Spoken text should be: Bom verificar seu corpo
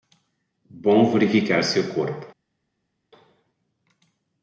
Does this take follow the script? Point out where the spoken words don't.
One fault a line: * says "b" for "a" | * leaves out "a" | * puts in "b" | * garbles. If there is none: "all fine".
all fine